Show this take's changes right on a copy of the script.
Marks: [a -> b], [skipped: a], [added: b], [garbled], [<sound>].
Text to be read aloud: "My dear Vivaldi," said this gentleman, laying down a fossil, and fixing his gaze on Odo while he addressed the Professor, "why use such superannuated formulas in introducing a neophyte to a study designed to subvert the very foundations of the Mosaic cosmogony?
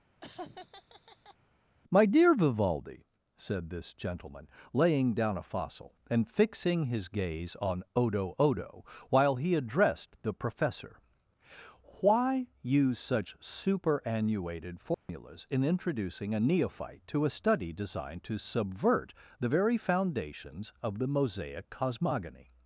[laugh] "My dear Vivaldi," said this gentleman, laying down a fossil, and fixing his gaze on Odo [added: Odo] while he addressed the Professor, "why use such superannuated formulas [dropout] in introducing a neophyte to a study designed to subvert the very foundations of the Mosaic cosmogony?